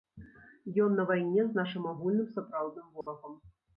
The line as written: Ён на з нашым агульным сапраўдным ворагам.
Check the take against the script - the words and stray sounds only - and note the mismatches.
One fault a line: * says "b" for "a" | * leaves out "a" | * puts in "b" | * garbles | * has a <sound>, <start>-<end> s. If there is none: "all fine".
* puts in "вайне"
* has a dropout, 3.0-3.1 s